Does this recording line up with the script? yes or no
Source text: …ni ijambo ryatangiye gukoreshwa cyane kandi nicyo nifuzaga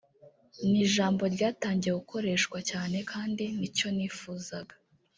yes